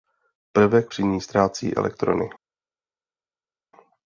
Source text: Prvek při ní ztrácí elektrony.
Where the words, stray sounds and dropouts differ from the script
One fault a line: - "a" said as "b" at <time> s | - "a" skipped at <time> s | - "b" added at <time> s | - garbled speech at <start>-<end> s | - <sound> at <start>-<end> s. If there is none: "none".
none